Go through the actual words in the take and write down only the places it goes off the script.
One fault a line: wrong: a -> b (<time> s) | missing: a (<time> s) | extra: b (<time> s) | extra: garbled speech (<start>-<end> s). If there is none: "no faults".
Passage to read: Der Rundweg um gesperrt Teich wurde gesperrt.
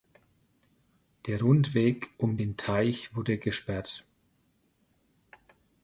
wrong: gesperrt -> den (2.4 s)